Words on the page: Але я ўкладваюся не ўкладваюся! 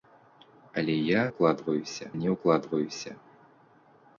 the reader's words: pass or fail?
pass